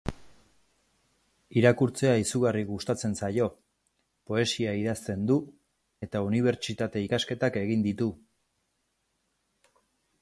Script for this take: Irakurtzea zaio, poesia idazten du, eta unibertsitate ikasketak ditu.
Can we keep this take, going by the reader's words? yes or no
no